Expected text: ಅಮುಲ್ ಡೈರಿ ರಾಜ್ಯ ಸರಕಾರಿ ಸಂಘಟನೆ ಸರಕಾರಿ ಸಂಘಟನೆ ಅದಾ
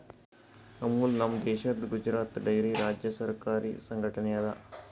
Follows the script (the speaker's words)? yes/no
no